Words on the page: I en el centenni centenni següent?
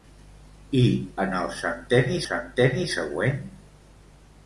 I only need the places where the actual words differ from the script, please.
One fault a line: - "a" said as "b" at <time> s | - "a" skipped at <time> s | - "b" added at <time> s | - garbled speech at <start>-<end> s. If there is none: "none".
none